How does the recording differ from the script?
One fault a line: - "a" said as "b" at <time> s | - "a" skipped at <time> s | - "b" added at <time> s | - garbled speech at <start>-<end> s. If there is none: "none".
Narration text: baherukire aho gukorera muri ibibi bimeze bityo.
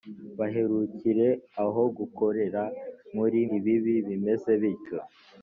none